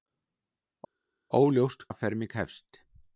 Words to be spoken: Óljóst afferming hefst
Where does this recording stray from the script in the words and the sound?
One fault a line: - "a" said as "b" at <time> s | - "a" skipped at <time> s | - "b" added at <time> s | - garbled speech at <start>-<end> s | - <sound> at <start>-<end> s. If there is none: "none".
none